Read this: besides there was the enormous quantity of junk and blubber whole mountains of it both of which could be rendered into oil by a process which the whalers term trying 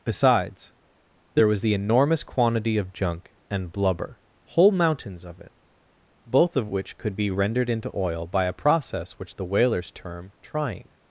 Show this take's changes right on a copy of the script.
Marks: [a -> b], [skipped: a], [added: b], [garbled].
besides there was the enormous quantity of junk and blubber whole mountains of it both of which could be rendered into oil by a process which the whalers term trying